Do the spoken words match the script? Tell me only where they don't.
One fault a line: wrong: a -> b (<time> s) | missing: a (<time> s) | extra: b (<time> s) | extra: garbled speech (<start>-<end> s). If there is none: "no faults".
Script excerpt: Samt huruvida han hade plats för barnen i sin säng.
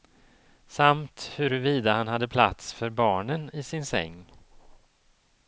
no faults